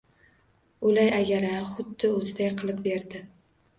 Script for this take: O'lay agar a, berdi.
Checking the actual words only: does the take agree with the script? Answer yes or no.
no